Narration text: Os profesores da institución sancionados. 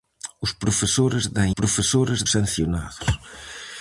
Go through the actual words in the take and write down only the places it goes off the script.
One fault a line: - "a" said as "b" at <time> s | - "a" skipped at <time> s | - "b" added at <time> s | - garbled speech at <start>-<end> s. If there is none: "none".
- "institución" said as "profesores" at 1.6 s